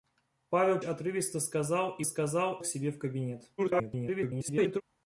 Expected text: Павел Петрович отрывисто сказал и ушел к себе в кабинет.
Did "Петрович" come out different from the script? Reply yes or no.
yes